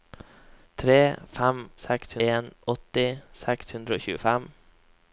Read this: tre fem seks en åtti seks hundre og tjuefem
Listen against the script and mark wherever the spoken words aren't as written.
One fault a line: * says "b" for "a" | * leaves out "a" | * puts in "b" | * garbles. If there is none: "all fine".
all fine